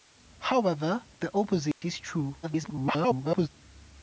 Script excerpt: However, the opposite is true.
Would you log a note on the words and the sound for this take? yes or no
yes